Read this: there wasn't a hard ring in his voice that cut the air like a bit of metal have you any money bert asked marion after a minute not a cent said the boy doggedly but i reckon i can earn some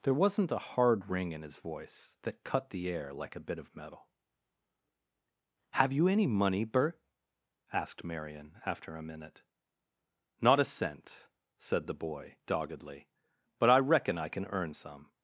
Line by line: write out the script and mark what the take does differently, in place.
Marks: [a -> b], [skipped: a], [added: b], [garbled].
there wasn't a hard ring in his voice that cut the air like a bit of metal have you any money bert asked marion after a minute not a cent said the boy doggedly but i reckon i can earn some